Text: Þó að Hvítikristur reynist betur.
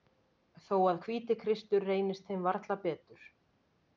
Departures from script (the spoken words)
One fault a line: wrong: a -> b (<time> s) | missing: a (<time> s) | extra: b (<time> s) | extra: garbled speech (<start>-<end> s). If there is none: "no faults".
extra: þeim varla (2.3 s)